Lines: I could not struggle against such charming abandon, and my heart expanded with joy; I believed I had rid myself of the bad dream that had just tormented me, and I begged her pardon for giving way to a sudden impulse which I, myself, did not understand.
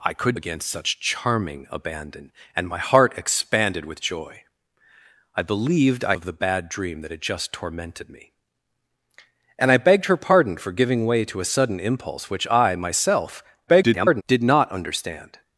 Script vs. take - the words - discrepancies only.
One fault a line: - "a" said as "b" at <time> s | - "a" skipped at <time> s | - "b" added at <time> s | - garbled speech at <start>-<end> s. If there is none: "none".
- "not struggle" skipped at 0.4 s
- "had rid myself" skipped at 6.2 s
- garbled speech at 13.7-14.2 s